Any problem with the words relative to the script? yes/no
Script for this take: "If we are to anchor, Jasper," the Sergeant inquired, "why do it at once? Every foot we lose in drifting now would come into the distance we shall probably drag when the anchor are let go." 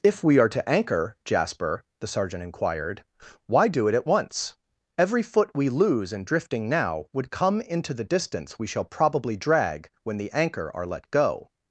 no